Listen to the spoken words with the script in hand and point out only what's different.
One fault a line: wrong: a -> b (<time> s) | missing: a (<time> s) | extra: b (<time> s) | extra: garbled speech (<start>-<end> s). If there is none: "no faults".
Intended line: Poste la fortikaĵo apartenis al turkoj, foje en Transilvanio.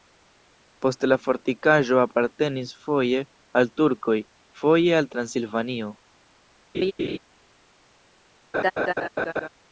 extra: foje (2.9 s)
wrong: en -> al (5.0 s)